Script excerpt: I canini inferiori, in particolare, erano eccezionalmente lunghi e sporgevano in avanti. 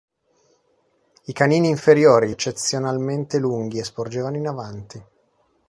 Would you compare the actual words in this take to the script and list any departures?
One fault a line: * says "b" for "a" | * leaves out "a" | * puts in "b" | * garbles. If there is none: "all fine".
* leaves out "in particolare erano"